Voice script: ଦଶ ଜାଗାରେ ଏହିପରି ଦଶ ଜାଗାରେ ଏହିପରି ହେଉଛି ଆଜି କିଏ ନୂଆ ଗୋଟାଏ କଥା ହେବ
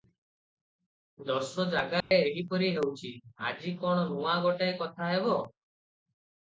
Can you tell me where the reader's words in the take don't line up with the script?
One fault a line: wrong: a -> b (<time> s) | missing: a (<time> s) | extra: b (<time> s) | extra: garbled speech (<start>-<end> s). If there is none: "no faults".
missing: ଦଶ ଜାଗାରେ ଏହିପରି (2.7 s)
wrong: କିଏ -> କଣ (3.8 s)